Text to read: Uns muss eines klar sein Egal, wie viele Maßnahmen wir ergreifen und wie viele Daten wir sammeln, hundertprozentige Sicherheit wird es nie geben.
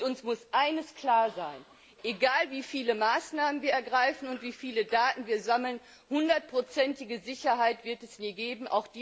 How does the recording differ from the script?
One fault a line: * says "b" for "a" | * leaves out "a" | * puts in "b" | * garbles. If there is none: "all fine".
all fine